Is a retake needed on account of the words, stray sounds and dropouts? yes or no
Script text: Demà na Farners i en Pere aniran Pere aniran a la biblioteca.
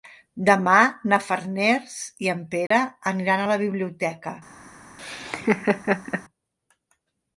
yes